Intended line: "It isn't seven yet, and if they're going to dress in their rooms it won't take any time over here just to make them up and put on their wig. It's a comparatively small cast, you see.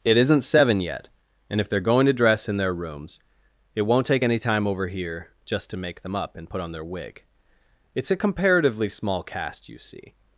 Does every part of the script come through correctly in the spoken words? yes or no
yes